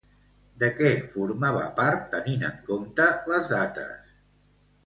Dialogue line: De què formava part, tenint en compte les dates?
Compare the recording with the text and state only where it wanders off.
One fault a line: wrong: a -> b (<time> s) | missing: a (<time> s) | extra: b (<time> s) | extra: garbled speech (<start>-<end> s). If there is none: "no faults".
no faults